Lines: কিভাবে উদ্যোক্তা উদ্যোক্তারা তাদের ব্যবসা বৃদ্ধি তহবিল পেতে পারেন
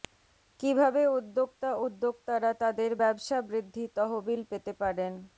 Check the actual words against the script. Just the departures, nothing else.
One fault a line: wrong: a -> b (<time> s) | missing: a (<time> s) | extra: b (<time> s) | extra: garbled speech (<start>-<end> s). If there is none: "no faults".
no faults